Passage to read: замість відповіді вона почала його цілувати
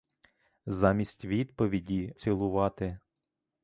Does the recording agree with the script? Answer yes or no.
no